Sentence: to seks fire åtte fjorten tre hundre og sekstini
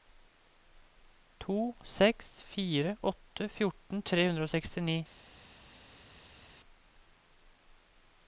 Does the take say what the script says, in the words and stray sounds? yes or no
yes